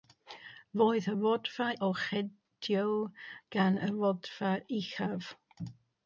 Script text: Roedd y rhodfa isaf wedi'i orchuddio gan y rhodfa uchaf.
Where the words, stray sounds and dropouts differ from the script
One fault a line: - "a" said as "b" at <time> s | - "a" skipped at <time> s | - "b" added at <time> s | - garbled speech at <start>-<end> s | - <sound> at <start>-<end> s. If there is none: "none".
- "isaf wedi'i" skipped at 1.7 s